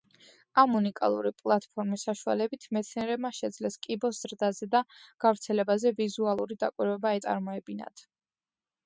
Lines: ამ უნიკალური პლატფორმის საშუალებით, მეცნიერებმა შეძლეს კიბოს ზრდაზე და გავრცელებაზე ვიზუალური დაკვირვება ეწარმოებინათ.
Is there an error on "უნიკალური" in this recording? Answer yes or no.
no